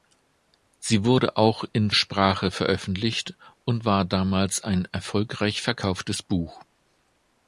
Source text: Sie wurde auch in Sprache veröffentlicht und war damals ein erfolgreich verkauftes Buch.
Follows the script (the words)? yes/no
yes